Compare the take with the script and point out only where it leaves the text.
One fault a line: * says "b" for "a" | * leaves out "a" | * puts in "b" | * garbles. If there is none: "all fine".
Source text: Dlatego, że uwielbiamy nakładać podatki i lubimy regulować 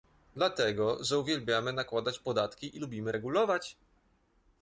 all fine